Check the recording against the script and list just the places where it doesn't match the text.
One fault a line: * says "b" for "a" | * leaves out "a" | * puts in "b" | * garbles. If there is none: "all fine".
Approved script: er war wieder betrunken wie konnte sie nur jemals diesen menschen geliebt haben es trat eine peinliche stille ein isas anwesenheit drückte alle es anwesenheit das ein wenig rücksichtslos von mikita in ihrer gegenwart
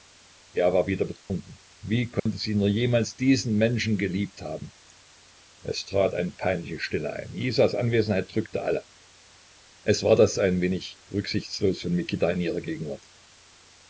* says "war" for "anwesenheit"